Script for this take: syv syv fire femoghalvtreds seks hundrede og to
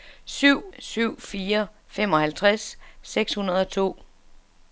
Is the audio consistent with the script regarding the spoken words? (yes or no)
yes